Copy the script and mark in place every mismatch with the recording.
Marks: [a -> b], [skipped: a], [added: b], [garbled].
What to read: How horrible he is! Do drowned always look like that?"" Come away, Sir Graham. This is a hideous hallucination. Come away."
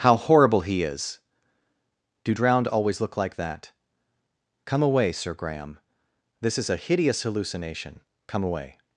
How horrible he is! Do drowned always look like that?"" Come away, Sir Graham. This is a hideous hallucination. Come away."